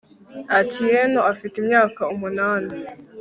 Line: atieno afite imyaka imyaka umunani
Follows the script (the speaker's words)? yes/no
no